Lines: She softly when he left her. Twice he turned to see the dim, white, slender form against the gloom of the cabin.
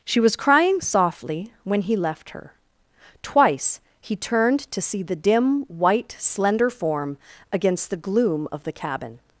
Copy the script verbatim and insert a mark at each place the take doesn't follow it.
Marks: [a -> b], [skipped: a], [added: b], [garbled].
She [added: was crying] softly when he left her. Twice he turned to see the dim, white, slender form against the gloom of the cabin.